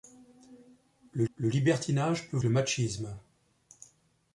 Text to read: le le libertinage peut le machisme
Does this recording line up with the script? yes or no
yes